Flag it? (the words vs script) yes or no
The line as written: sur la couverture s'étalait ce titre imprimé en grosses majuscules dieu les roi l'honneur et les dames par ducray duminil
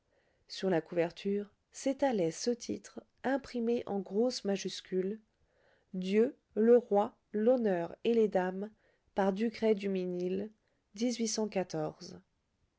yes